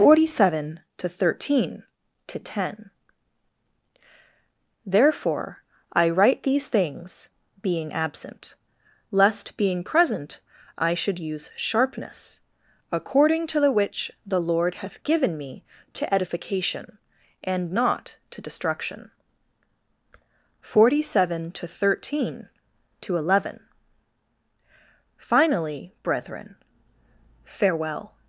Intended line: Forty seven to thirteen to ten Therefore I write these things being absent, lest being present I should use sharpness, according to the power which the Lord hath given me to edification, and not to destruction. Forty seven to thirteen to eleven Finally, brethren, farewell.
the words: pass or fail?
fail